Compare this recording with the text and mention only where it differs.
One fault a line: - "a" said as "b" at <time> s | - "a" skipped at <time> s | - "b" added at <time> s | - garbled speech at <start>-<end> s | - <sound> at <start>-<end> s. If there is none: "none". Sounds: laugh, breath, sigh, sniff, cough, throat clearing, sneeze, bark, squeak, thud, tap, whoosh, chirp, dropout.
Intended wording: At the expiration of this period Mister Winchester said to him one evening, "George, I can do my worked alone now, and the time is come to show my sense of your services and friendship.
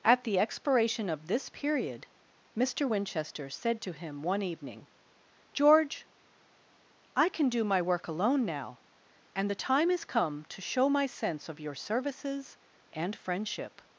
- "worked" said as "work" at 7.8 s